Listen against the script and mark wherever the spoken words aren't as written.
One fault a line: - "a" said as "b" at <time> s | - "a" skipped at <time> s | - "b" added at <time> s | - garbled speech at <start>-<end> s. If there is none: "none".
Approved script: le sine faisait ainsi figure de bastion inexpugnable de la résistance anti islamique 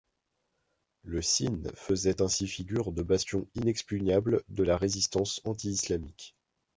none